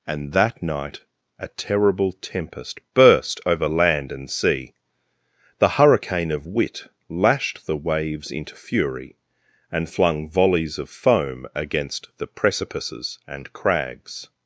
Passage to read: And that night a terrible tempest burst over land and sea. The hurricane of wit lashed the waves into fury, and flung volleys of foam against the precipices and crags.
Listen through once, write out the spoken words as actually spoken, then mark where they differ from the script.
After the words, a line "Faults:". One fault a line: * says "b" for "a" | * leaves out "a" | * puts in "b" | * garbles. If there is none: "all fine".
And that night a terrible tempest burst over land and sea. The hurricane of wit lashed the waves into fury, and flung volleys of foam against the precipices and crags.
Faults:
all fine